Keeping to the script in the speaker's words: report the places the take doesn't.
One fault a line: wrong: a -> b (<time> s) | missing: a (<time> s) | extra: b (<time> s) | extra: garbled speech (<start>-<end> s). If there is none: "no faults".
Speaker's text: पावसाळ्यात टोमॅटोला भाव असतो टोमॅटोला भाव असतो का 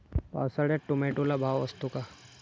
missing: टोमॅटोला भाव असतो (1.9 s)